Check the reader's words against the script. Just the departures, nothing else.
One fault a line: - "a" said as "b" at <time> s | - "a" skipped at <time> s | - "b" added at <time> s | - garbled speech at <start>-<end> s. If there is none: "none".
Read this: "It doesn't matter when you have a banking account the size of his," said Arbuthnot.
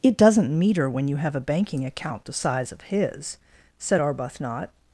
- "matter" said as "meter" at 0.6 s